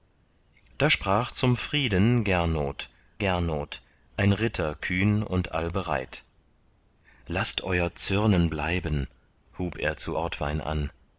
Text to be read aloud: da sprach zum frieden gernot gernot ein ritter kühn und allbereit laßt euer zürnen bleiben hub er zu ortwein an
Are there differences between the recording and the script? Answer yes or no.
no